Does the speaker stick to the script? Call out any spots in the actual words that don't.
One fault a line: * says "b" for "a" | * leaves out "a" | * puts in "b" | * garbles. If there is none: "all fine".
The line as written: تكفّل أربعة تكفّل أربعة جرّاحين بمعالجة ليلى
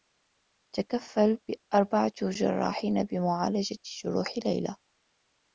* leaves out "تكفّل أربعة"
* puts in "جروح"